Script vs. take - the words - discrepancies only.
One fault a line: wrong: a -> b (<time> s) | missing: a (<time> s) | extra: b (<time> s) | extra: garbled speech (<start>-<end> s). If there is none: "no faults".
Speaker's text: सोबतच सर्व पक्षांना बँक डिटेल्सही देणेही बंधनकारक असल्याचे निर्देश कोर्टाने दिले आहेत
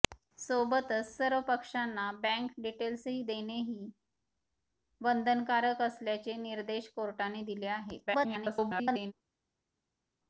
extra: garbled speech (8.1-9.1 s)